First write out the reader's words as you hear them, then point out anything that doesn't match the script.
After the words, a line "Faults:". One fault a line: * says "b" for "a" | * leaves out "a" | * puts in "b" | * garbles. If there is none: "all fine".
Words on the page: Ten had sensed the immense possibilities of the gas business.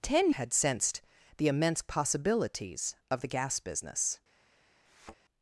Ten had sensed the immense possibilities of the gas business.
Faults:
all fine